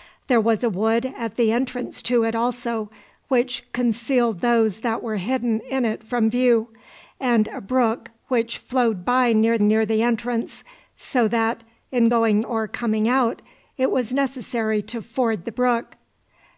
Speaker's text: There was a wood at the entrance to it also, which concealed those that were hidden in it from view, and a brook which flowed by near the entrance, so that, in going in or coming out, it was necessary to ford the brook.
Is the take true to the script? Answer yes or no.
no